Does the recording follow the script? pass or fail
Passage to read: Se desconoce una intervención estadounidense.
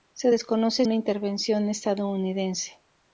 pass